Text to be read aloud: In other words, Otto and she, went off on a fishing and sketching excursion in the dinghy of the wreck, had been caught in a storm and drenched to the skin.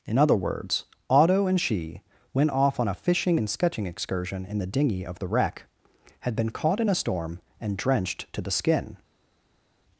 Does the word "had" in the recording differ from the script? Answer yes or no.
no